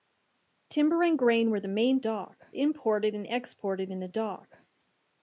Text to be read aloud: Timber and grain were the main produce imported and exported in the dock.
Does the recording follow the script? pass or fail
fail